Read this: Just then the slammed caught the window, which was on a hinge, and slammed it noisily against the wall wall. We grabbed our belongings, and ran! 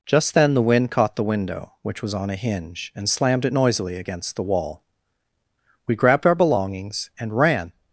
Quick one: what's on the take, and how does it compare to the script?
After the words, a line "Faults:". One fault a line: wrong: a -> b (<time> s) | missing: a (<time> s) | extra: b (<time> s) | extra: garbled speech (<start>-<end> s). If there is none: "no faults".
Just then the wind caught the window, which was on a hinge, and slammed it noisily against the wall. We grabbed our belongings, and ran!
Faults:
wrong: slammed -> wind (0.6 s)
missing: wall (4.8 s)